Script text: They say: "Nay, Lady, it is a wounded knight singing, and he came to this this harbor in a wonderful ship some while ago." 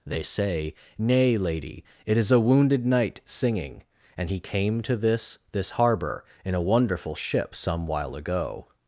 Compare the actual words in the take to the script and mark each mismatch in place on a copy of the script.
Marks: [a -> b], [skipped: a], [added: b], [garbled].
They say: "Nay, Lady, it is a wounded knight singing, and he came to this this harbor in a wonderful ship some while ago."